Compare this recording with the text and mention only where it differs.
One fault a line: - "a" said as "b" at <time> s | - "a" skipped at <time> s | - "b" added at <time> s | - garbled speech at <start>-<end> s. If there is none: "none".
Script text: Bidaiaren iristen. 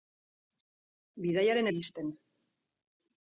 none